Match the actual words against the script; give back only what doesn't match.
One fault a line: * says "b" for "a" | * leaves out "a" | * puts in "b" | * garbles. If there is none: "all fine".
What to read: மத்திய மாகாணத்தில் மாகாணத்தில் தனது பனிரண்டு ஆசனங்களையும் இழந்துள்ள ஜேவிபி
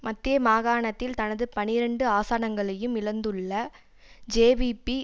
* leaves out "மாகாணத்தில்"